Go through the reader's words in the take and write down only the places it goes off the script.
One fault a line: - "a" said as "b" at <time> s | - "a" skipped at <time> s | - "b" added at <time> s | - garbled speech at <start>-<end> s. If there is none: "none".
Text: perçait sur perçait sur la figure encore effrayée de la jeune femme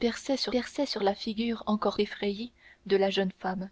none